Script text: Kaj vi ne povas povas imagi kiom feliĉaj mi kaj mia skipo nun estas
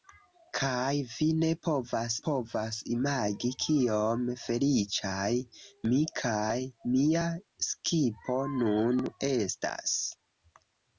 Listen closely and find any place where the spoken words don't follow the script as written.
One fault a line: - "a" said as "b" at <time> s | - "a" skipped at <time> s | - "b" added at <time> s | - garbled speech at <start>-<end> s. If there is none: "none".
none